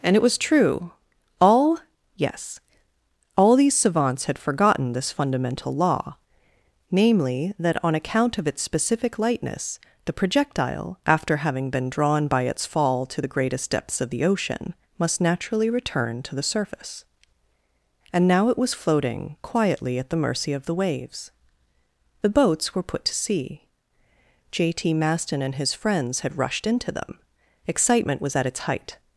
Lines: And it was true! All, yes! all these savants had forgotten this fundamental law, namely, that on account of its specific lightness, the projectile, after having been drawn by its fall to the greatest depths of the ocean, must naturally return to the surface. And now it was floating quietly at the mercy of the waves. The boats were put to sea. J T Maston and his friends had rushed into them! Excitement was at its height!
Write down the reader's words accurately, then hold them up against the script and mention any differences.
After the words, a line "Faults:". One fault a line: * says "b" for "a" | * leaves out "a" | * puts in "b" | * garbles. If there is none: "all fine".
And it was true! All, yes! all these savants had forgotten this fundamental law, namely, that on account of its specific lightness, the projectile, after having been drawn by its fall to the greatest depths of the ocean, must naturally return to the surface. And now it was floating quietly at the mercy of the waves. The boats were put to sea. J T Maston and his friends had rushed into them! Excitement was at its height!
Faults:
all fine